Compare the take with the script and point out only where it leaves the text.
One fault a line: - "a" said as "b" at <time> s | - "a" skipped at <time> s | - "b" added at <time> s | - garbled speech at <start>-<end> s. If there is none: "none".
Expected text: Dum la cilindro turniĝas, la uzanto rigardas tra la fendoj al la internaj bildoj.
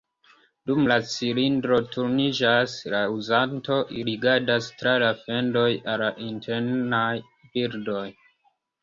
none